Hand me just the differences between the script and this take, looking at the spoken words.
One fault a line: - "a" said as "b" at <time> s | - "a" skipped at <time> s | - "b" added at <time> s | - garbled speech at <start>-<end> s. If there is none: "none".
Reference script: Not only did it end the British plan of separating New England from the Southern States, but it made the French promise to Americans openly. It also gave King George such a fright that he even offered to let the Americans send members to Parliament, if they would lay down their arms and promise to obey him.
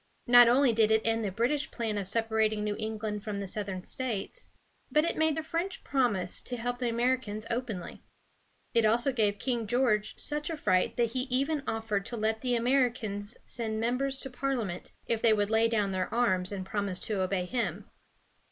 - "help the" added at 6.6 s